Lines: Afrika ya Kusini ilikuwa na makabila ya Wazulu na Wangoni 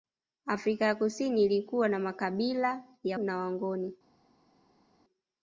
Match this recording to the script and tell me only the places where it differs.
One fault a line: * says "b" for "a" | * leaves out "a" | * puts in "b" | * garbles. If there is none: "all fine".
* leaves out "Wazulu"